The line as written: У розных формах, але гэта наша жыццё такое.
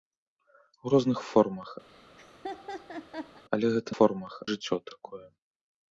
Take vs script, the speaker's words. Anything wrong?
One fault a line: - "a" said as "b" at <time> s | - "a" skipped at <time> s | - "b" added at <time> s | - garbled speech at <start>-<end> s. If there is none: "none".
- "наша" said as "формах" at 4.0 s